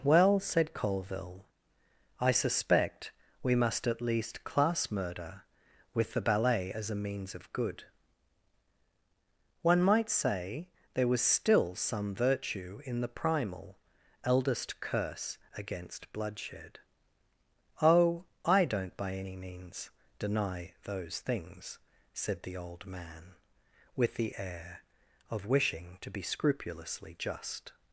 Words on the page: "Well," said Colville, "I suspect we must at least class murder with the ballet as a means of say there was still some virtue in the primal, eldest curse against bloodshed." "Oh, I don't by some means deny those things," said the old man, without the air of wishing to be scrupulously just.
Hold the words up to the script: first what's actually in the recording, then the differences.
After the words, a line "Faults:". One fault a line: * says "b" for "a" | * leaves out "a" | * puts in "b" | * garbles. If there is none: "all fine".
"Well," said Colville, "I suspect we must at least class murder with the ballet as a means of good. One might say there was still some virtue in the primal, eldest curse against bloodshed." "Oh, I don't by any means deny those things," said the old man, with the air of wishing to be scrupulously just.
Faults:
* puts in "good One might"
* says "any" for "some"
* says "with" for "without"